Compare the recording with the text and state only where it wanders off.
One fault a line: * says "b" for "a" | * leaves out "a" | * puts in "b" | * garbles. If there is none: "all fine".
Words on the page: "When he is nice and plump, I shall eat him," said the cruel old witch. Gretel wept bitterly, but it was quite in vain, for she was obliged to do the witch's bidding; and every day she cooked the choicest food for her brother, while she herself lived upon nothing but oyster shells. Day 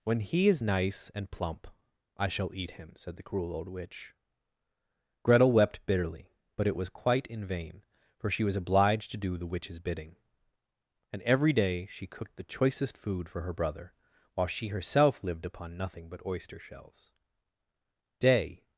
all fine